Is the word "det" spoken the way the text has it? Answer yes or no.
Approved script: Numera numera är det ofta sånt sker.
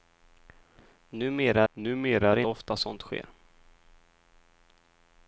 yes